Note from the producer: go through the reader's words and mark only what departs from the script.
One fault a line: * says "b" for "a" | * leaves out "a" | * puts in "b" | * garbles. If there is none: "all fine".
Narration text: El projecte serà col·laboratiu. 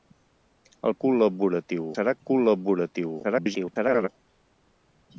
* says "col·laboratiu" for "projecte"
* garbles